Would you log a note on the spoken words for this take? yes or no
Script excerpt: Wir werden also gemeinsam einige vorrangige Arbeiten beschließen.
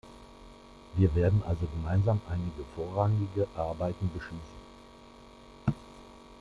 no